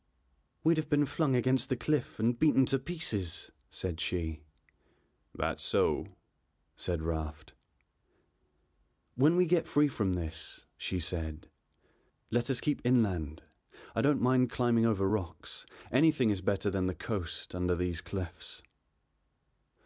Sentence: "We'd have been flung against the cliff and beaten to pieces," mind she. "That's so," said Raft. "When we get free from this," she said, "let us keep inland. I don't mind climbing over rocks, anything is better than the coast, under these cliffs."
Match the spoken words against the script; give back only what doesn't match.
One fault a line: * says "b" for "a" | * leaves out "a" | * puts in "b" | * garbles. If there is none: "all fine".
* says "said" for "mind"